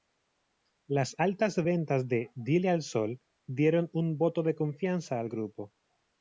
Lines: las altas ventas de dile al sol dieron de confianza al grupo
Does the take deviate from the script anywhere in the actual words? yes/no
yes